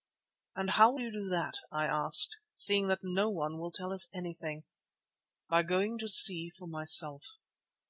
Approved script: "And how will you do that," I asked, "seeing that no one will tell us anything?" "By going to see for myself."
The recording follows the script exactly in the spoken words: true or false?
true